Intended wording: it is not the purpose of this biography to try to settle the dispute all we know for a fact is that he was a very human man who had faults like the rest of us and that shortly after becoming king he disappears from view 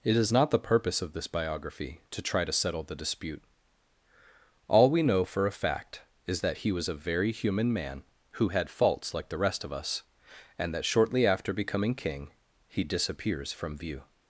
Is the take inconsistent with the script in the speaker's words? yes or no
no